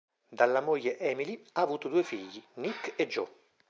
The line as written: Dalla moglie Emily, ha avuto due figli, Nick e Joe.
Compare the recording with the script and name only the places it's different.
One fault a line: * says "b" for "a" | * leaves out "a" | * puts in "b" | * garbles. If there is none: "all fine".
all fine